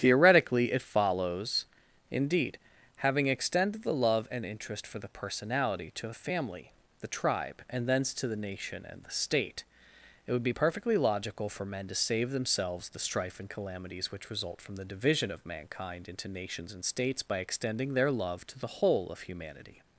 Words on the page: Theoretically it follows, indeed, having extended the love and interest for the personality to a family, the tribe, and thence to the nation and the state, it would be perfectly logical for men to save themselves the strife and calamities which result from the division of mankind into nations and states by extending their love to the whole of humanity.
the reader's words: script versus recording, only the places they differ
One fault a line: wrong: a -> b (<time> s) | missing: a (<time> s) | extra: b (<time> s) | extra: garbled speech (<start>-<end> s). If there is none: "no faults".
no faults